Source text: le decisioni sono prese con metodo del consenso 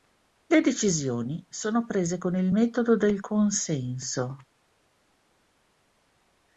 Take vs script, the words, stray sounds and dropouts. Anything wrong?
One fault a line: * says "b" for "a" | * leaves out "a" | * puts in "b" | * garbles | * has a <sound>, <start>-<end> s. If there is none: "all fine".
* puts in "il"